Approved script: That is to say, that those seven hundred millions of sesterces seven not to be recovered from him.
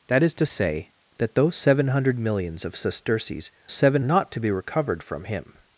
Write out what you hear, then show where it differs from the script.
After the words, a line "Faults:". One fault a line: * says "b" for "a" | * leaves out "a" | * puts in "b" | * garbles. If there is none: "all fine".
That is to say, that those seven hundred millions of sesterces seven not to be recovered from him.
Faults:
all fine